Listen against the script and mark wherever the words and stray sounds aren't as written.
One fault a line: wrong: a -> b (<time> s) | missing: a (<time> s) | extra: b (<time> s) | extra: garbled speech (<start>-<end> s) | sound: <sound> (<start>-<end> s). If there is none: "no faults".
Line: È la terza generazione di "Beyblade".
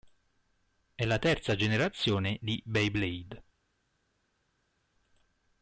no faults